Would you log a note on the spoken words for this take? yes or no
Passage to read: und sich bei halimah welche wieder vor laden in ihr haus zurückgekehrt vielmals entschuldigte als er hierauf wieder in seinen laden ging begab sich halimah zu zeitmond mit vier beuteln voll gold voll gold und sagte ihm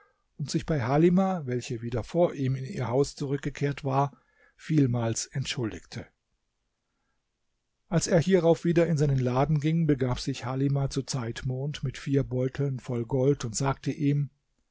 yes